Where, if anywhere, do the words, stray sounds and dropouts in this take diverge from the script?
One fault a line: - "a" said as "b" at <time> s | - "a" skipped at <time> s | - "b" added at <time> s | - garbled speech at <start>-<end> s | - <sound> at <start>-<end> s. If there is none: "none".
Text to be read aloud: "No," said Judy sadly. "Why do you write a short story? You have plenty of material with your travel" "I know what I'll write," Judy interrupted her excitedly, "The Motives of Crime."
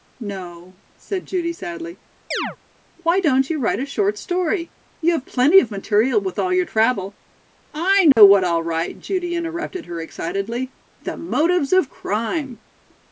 - chirp at 2.3-2.6 s
- "do" said as "don't" at 3.2 s
- "all" added at 6.4 s
- dropout at 8.1-8.2 s